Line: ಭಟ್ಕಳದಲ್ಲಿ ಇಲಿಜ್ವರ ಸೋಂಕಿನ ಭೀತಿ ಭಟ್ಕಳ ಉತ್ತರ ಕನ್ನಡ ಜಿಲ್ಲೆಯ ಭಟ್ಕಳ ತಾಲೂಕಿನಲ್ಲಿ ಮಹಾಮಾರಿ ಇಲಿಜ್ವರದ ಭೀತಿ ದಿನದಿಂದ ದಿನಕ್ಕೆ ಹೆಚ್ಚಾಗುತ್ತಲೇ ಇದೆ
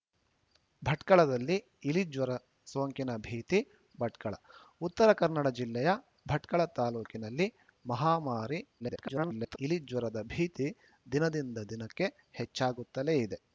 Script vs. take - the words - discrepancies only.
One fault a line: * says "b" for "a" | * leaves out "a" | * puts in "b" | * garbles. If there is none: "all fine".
* garbles